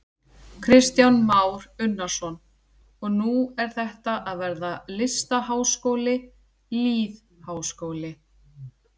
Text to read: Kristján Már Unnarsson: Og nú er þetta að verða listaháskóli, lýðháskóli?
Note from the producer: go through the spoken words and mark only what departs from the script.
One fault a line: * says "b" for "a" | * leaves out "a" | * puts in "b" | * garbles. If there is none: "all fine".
all fine